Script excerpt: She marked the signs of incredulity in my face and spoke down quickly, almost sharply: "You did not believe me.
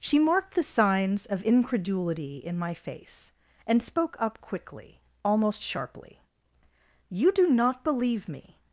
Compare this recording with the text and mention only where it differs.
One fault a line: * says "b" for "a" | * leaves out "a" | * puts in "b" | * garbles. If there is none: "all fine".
* says "up" for "down"
* says "do" for "did"